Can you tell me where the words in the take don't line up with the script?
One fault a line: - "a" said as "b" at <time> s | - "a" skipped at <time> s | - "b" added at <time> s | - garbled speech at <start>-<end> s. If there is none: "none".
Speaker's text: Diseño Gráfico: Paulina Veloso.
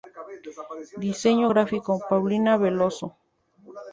none